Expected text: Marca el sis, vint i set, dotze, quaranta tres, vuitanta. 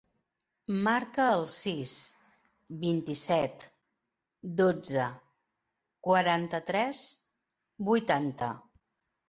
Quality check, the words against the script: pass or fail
pass